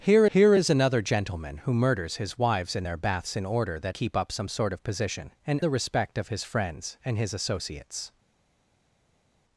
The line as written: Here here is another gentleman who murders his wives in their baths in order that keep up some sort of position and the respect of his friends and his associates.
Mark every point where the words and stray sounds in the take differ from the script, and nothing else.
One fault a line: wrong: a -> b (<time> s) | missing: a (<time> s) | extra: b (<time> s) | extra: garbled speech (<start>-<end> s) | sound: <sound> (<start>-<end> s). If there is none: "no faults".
no faults